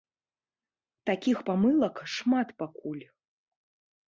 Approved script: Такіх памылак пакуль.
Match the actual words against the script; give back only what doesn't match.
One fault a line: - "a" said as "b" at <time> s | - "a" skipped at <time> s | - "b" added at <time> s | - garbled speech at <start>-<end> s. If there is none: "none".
- "шмат" added at 2.1 s